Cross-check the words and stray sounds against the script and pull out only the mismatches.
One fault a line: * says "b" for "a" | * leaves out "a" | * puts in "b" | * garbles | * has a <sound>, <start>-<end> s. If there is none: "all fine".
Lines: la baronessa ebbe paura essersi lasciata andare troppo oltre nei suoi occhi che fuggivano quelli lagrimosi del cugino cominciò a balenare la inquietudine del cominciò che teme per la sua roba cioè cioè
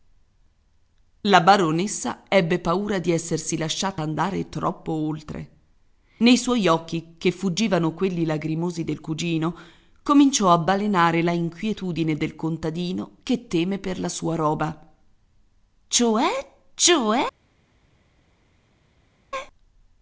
* puts in "di"
* says "contadino" for "cominciò"